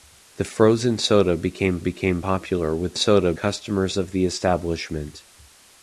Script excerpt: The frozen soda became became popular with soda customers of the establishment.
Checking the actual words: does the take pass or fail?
pass